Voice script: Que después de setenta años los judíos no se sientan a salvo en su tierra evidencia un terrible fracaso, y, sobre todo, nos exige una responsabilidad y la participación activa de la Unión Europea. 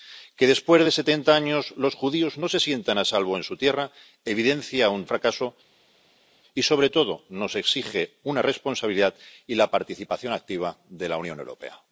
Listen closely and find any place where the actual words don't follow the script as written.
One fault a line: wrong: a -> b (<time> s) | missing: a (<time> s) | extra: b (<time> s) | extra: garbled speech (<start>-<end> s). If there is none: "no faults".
missing: terrible (5.0 s)